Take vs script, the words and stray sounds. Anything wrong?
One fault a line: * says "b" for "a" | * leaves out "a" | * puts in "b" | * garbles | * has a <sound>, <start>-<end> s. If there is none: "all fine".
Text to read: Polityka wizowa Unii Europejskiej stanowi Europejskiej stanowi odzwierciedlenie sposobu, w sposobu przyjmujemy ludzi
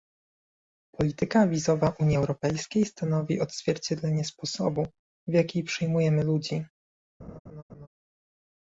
* leaves out "Europejskiej stanowi"
* says "jaki" for "sposobu"
* has a laugh, 7.2-7.9 s